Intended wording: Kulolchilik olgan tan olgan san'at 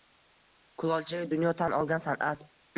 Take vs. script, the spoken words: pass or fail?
fail